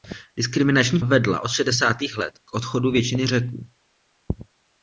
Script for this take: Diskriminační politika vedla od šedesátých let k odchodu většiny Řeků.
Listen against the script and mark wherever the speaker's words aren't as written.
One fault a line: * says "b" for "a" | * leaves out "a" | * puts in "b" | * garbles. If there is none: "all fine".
* leaves out "politika"